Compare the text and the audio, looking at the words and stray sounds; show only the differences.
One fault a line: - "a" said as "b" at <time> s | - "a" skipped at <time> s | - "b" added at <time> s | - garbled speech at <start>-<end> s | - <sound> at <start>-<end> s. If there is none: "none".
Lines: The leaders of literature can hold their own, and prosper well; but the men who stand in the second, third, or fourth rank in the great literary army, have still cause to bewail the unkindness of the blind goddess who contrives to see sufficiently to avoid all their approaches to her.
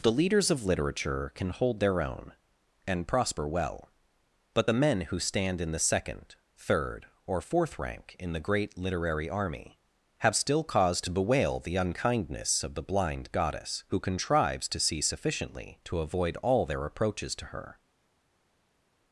none